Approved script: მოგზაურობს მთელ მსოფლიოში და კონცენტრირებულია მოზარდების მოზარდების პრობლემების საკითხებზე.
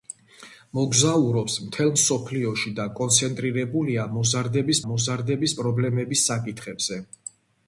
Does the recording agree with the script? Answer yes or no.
yes